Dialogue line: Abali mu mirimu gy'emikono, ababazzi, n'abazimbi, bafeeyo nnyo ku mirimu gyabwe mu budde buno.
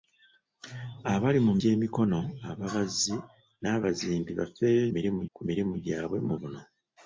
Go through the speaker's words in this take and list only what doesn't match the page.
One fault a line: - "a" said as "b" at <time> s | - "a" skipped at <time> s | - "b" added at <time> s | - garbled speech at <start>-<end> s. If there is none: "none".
- "mirimu" skipped at 1.5 s
- "nnyo" said as "mirimu" at 4.9 s
- "budde" skipped at 6.3 s